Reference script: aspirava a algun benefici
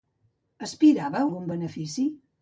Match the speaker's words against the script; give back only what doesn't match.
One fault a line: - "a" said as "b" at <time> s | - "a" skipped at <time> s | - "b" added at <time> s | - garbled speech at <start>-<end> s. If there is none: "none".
none